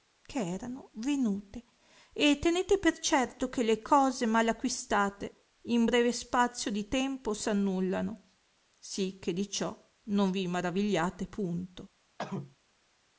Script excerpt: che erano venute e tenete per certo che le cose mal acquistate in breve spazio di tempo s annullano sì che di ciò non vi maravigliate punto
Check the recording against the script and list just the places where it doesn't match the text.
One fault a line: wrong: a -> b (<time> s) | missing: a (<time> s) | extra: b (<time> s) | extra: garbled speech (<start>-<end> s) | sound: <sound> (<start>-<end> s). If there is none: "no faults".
sound: cough (12.2-12.6 s)